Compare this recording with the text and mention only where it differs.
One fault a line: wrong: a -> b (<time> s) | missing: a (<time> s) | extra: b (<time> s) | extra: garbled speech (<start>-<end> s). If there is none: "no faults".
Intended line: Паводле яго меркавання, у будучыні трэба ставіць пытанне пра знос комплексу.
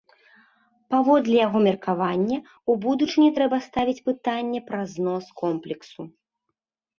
no faults